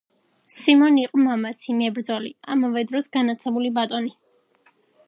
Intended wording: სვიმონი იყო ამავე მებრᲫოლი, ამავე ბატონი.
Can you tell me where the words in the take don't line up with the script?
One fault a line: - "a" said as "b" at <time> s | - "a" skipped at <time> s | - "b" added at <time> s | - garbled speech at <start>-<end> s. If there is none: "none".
- "ამავე" said as "მამაცი" at 1.2 s
- "დროს განაᲗლებული" added at 2.9 s